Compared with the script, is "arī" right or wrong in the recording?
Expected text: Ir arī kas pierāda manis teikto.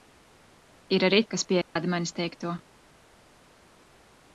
right